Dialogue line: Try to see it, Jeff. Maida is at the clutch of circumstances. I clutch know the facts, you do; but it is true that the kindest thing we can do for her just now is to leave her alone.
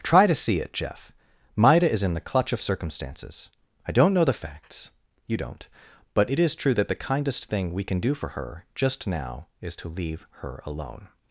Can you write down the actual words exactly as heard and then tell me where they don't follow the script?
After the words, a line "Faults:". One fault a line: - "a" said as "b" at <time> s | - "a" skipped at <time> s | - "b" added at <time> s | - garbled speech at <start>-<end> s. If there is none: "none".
Try to see it, Jeff. Maida is in the clutch of circumstances. I don't know the facts, you don't; but it is true that the kindest thing we can do for her just now is to leave her alone.
Faults:
- "at" said as "in" at 2.0 s
- "clutch" said as "don't" at 3.9 s
- "do" said as "don't" at 5.4 s